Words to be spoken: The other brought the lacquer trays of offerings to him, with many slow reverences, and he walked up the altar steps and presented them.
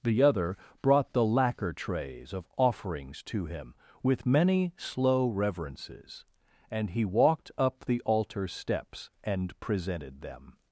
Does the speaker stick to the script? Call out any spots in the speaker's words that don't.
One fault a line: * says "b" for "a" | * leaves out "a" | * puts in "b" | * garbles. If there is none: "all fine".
all fine